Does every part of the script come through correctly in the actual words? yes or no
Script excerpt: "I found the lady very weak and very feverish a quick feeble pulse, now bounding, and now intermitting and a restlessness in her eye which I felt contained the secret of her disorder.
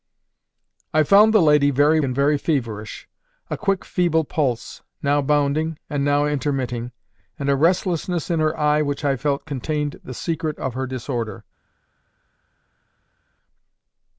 no